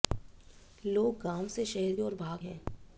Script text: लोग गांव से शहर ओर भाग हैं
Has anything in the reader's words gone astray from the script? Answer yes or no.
no